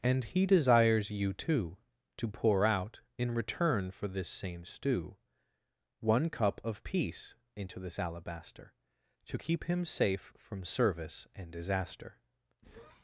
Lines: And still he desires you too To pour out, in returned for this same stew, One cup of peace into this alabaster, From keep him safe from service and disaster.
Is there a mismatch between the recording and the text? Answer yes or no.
yes